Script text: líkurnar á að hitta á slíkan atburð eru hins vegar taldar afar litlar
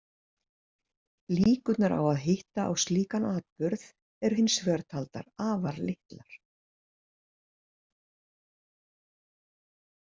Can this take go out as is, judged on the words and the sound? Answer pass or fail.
pass